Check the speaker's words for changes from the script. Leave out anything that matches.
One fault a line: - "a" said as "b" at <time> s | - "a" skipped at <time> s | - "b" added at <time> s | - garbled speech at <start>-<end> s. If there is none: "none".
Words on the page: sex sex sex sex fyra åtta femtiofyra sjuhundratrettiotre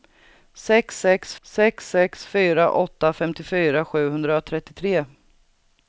none